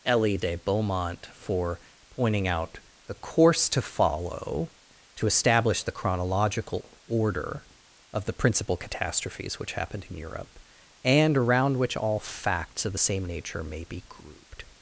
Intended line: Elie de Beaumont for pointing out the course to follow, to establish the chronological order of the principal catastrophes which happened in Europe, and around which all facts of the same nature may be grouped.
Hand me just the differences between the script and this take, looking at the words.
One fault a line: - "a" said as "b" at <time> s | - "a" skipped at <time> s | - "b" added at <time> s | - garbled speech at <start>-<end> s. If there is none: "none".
none